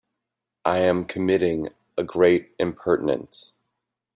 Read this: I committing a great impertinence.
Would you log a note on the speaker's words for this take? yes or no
yes